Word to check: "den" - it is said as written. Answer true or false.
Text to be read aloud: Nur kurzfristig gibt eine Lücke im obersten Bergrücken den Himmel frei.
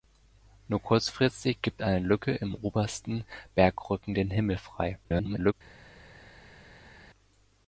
true